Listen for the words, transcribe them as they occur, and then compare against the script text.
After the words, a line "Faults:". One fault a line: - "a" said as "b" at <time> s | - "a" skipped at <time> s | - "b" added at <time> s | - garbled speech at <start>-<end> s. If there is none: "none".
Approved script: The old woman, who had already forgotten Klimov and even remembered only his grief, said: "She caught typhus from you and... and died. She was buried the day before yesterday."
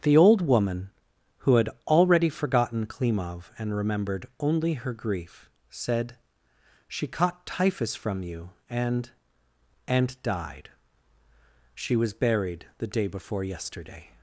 The old woman, who had already forgotten Klimov and remembered only her grief, said: "She caught typhus from you and... and died. She was buried the day before yesterday."
Faults:
- "even" skipped at 3.7 s
- "his" said as "her" at 4.7 s